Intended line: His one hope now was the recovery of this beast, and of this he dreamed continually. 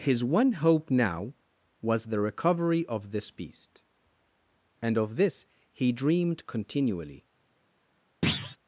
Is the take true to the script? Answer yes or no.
yes